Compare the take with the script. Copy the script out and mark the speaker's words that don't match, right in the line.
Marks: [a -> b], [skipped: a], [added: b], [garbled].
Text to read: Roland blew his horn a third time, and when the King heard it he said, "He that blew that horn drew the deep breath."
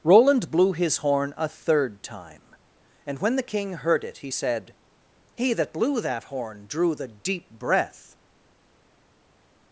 Roland blew his horn a third time, and when the King heard it he said, "He that blew that horn drew the deep breath."